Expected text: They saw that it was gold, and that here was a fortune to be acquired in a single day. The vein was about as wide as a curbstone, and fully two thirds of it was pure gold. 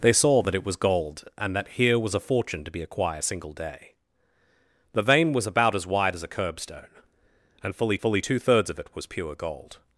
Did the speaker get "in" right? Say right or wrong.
wrong